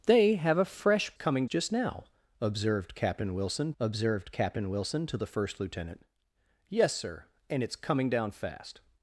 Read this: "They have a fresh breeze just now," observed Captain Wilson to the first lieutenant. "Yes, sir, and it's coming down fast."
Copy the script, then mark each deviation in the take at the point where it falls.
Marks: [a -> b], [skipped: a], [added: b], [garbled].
"They have a fresh [breeze -> coming] just now," observed Captain Wilson [added: observed Captain Wilson] to the first lieutenant. "Yes, sir, and it's coming down fast."